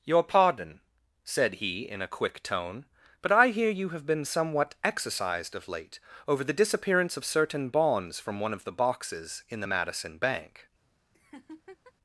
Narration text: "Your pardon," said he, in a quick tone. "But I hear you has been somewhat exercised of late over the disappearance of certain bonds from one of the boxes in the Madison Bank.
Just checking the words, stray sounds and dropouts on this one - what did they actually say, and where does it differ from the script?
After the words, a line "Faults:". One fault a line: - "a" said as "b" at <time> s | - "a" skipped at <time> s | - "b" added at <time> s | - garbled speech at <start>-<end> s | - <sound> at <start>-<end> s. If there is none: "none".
"Your pardon," said he, in a quick tone. "But I hear you have been somewhat exercised of late over the disappearance of certain bonds from one of the boxes in the Madison Bank.
Faults:
- "has" said as "have" at 3.9 s
- laugh at 11.1-11.9 s